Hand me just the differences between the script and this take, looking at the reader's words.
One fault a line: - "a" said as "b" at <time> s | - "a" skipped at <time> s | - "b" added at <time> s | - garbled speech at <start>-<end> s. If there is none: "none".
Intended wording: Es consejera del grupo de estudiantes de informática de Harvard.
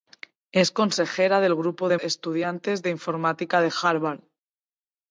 none